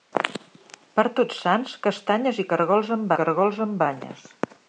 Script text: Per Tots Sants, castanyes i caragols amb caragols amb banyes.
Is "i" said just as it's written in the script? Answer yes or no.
yes